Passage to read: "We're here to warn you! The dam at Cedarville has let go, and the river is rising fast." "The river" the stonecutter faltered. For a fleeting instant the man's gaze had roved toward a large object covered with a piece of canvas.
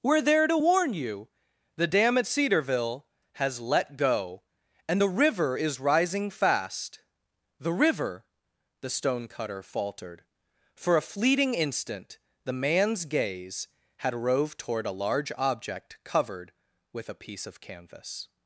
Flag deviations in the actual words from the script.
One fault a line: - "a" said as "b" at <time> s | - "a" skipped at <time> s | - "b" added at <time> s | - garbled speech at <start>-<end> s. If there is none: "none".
- "here" said as "there" at 0.2 s